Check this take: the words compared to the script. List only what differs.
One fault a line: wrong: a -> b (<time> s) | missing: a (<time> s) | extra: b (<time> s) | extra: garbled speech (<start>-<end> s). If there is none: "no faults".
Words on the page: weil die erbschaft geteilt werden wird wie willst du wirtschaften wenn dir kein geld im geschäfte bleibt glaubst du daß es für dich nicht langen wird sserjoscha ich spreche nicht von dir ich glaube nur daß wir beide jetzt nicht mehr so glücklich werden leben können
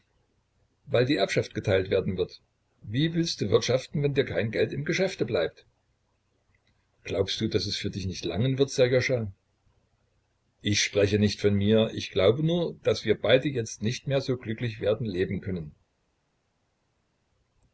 wrong: dir -> mir (11.5 s)